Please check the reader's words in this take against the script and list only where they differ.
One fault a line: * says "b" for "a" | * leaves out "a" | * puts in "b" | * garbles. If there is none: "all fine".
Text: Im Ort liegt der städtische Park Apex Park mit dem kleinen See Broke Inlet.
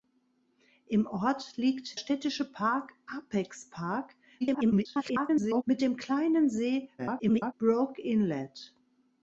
* leaves out "der"
* garbles
* garbles